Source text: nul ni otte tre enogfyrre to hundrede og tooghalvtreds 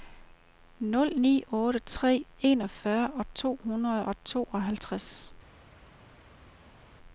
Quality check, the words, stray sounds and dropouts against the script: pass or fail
pass